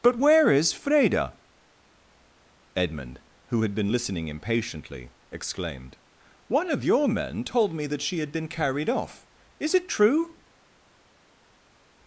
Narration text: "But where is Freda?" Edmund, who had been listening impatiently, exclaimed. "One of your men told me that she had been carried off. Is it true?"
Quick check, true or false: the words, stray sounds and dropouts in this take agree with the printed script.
true